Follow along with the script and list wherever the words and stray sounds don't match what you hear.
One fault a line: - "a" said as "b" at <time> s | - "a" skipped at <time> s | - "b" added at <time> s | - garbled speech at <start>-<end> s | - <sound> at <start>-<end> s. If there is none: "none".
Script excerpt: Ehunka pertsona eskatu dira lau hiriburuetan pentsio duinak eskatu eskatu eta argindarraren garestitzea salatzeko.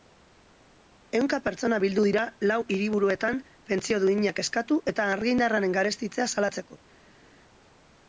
- "eskatu" said as "bildu" at 1.8 s
- "eskatu" skipped at 4.8 s